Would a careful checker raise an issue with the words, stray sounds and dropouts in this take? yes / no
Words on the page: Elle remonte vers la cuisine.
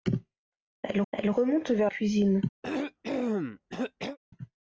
yes